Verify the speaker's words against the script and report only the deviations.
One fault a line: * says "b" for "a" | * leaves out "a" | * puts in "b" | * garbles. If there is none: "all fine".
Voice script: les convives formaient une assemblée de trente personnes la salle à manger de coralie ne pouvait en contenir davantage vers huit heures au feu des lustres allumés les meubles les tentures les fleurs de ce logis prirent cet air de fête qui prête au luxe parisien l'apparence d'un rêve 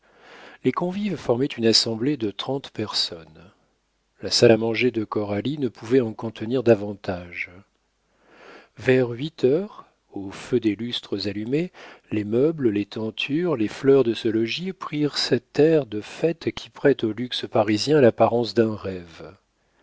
all fine